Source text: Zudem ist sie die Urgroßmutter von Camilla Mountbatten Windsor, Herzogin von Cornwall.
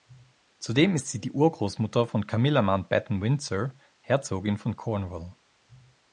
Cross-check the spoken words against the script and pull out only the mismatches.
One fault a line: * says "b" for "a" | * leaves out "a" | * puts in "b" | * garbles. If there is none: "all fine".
all fine